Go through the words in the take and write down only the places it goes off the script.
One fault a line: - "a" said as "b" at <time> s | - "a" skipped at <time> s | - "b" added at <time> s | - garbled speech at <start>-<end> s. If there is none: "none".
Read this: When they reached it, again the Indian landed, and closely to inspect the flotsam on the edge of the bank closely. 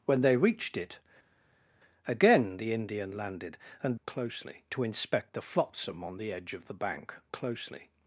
none